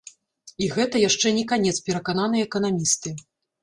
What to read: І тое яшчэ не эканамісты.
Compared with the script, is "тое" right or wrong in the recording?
wrong